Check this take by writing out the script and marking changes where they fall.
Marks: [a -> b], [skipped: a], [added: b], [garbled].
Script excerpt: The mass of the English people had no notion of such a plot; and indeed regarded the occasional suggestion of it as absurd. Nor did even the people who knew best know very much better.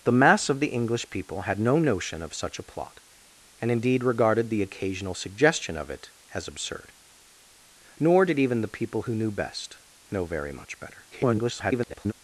The mass of the English people had no notion of such a plot; and indeed regarded the occasional suggestion of it as absurd. Nor did even the people who knew best know very much better. [garbled]